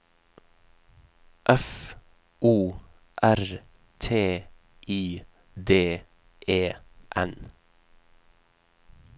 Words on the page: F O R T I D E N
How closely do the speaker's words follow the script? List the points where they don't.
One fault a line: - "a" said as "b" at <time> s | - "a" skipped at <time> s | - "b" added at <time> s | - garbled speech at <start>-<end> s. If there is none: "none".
none